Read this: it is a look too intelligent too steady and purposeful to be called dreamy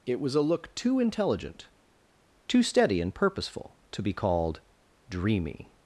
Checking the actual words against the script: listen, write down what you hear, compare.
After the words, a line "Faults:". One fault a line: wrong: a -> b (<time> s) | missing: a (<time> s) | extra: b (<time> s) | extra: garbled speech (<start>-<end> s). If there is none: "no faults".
it was a look too intelligent too steady and purposeful to be called dreamy
Faults:
wrong: is -> was (0.2 s)